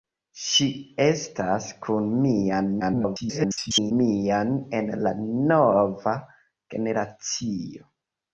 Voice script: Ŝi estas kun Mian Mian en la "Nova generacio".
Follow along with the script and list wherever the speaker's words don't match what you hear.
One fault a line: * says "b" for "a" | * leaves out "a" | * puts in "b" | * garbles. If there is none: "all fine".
* garbles